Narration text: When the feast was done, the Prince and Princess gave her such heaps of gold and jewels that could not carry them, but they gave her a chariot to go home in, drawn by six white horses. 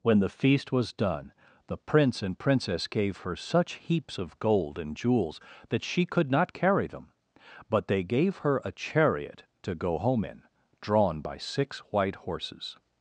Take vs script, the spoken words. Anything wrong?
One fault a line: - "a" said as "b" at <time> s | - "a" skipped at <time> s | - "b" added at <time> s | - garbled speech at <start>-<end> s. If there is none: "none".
- "she" added at 5.8 s